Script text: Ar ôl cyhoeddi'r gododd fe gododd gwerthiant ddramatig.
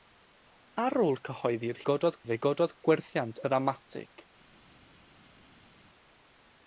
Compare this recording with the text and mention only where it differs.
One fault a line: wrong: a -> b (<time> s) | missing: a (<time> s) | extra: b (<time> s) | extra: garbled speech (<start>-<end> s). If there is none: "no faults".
no faults